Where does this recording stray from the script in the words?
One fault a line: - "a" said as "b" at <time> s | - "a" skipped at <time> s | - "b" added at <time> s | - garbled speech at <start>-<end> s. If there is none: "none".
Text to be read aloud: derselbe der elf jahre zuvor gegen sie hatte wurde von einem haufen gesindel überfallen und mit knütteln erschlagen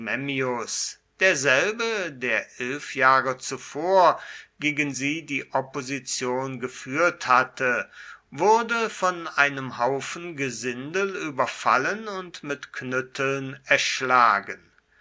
- "die opposition geführt" added at 5.3 s